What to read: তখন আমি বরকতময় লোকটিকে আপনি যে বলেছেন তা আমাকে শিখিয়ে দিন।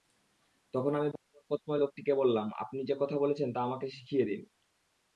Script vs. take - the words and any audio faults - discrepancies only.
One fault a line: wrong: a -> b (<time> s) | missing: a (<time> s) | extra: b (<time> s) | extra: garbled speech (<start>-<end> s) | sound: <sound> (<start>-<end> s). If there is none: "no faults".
extra: বললাম (2.1 s)
extra: কথা (3.0 s)